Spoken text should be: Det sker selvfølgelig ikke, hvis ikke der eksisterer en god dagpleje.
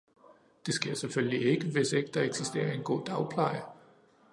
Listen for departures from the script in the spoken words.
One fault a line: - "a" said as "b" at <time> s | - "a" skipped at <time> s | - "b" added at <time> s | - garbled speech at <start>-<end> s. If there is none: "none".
none